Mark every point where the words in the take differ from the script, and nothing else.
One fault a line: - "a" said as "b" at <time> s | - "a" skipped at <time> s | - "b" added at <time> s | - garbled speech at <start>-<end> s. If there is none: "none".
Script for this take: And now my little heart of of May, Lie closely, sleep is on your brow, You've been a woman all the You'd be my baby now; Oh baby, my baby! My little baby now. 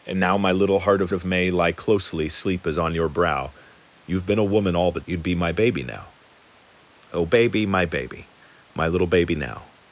none